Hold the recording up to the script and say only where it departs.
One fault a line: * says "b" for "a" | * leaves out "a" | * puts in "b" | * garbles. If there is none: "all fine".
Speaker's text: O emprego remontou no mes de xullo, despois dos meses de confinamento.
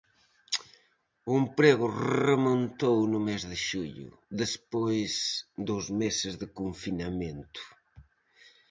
all fine